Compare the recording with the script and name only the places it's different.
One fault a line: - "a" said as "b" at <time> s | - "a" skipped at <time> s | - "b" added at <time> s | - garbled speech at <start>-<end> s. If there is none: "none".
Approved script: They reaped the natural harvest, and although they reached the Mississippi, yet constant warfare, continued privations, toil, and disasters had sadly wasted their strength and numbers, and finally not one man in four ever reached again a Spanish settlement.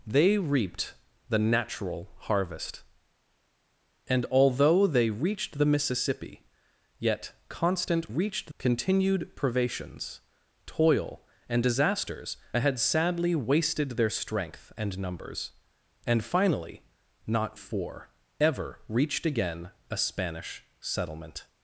- "warfare" said as "reached" at 8.1 s
- "one man in" skipped at 17.6 s